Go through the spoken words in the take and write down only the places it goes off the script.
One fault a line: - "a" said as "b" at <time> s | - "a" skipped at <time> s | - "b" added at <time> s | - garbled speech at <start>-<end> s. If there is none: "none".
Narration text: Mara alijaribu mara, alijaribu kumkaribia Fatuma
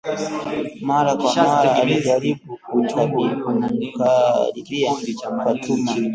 - "alijaribu" said as "kwa" at 1.1 s